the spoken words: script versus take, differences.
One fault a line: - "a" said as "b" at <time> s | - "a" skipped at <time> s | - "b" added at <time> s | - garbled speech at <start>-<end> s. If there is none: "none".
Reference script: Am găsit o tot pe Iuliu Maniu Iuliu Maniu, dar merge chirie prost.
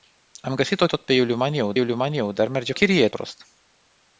none